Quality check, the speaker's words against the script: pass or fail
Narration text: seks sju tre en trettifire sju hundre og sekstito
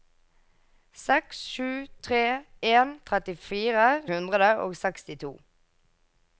fail